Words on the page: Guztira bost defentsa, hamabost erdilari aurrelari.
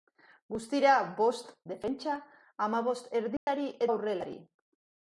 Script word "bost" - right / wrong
right